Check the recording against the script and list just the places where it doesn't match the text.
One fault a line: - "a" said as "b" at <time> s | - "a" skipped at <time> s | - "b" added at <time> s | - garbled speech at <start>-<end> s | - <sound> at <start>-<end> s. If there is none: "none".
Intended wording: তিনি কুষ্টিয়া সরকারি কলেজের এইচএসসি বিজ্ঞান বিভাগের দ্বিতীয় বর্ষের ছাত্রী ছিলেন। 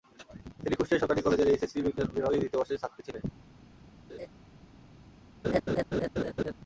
- laugh at 4.1-4.3 s
- laugh at 5.4-6.5 s